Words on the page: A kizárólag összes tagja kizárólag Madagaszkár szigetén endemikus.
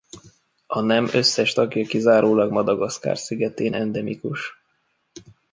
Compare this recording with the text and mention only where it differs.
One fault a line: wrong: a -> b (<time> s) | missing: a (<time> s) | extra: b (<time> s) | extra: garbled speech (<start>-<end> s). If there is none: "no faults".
wrong: kizárólag -> nem (0.8 s)